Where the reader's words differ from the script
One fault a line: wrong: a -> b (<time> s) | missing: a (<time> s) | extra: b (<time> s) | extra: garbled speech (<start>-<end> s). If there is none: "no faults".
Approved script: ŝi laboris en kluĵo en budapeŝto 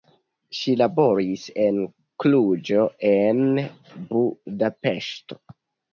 no faults